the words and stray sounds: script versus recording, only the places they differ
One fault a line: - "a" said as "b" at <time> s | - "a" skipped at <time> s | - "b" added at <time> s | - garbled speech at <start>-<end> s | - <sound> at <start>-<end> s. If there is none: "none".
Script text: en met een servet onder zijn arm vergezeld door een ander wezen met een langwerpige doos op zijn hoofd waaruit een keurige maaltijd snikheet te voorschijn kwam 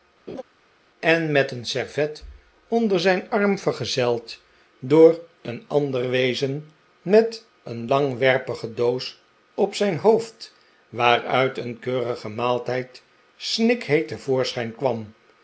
- laugh at 0.3-0.4 s